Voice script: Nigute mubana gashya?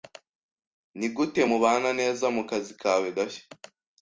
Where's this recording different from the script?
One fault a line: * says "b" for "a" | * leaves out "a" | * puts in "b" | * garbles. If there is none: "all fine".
* puts in "neza mukazi kawe"